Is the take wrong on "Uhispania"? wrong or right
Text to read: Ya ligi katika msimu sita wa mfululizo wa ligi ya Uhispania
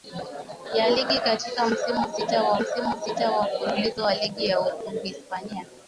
right